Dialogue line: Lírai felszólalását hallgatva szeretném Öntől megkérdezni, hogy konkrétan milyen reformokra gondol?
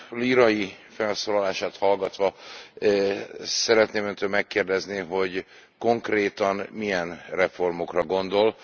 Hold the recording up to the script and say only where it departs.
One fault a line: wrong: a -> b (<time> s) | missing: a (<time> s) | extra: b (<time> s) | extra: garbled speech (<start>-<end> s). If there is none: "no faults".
no faults